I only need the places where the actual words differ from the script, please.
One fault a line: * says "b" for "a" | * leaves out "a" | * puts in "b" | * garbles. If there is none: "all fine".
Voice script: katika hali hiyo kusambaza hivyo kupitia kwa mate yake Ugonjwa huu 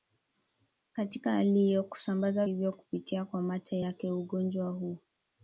all fine